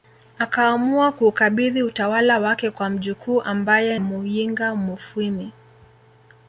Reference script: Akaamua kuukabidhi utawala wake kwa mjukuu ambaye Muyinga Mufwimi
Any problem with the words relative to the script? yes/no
no